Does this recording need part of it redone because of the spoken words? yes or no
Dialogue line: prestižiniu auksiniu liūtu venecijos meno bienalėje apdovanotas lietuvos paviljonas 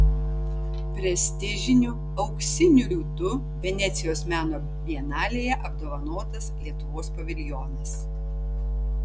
no